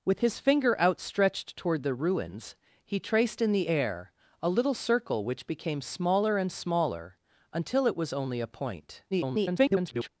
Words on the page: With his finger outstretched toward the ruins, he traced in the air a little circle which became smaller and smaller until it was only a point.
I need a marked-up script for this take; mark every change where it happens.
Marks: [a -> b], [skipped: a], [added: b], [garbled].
With his finger outstretched toward the ruins, he traced in the air a little circle which became smaller and smaller until it was only a point. [garbled]